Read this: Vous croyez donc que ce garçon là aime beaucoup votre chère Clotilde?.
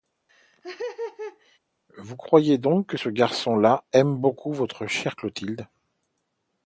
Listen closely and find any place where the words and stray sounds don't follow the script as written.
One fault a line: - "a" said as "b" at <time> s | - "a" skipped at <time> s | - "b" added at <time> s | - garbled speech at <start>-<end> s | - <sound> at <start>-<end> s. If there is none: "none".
- laugh at 0.3-1.6 s